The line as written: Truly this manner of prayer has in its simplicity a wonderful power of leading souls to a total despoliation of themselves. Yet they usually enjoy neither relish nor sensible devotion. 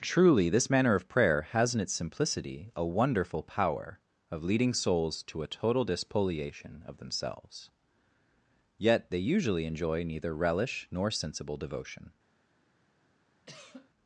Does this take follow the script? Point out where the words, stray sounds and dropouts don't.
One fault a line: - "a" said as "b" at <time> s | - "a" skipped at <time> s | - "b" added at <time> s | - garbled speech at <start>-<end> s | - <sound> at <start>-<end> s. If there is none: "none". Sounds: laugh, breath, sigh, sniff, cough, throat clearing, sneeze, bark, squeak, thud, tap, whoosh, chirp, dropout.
- cough at 13.5-13.9 s